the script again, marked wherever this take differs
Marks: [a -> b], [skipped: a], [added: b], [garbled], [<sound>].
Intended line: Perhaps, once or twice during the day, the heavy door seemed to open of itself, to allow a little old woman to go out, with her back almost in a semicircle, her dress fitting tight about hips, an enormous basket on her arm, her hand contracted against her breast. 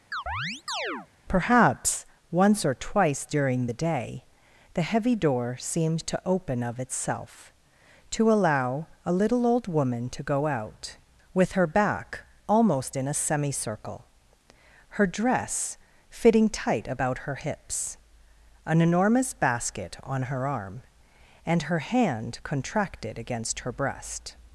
[chirp] Perhaps, once or twice during the day, the heavy door seemed to open of itself, to allow a little old woman to go out, with her back almost in a semicircle, her dress fitting tight about [added: her] hips, an enormous basket on her arm, [added: and] her hand contracted against her breast.